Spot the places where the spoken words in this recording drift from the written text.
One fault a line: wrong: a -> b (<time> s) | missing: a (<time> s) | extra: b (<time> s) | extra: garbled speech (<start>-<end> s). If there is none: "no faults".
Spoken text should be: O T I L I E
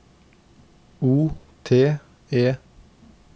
missing: I L I (2.0 s)